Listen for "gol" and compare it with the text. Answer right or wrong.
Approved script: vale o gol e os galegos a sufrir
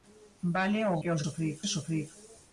wrong